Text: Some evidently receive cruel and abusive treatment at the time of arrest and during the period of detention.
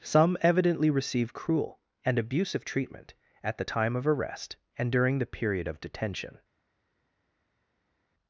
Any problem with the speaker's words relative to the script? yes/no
no